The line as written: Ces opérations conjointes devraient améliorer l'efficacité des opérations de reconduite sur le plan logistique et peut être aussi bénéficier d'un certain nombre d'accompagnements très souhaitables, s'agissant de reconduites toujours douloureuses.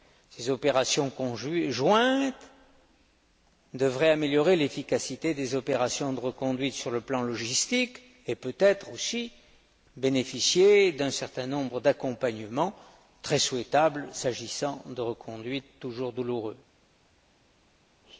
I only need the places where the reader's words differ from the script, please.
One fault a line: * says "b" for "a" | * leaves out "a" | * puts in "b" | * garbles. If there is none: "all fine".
all fine